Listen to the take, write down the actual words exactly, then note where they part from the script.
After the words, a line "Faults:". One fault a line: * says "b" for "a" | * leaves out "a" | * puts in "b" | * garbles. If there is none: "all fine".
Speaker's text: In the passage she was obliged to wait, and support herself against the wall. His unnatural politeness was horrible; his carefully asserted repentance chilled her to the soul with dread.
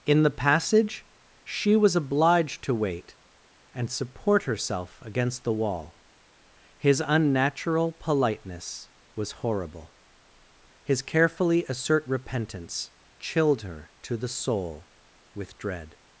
In the passage she was obliged to wait, and support herself against the wall. His unnatural politeness was horrible; his carefully assert repentance chilled her to the soul with dread.
Faults:
* says "assert" for "asserted"